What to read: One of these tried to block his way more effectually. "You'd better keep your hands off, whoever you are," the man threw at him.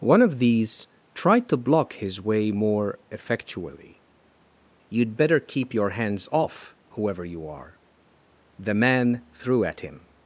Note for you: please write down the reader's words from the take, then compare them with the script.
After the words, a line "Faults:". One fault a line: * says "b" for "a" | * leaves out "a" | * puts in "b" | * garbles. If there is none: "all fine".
One of these tried to block his way more effectually. "You'd better keep your hands off, whoever you are," the man threw at him.
Faults:
all fine